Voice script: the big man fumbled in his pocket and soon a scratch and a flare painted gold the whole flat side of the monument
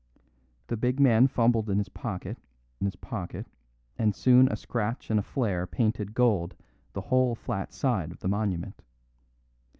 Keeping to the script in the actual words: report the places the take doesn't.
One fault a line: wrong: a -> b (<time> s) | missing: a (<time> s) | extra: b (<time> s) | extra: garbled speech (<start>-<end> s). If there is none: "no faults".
extra: his pocket (2.8 s)